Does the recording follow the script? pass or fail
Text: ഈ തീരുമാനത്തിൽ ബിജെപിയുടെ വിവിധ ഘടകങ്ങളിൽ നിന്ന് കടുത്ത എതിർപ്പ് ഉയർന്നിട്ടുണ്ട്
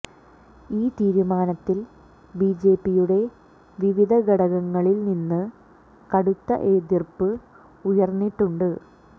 pass